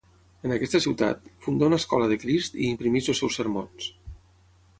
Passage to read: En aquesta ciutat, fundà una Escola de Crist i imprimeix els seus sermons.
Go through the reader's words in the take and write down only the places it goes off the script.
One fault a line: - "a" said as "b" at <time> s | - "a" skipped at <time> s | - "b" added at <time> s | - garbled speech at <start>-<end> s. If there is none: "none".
none